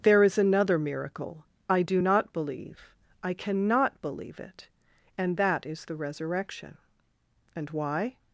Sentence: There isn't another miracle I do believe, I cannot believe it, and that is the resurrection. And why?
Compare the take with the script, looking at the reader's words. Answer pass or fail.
fail